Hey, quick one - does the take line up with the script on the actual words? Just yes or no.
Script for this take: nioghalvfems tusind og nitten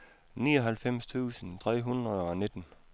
no